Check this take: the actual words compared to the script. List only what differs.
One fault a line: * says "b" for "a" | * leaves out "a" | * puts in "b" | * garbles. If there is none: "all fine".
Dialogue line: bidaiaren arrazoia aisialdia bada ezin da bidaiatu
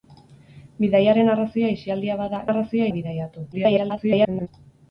* says "arrazoia" for "ezin"
* garbles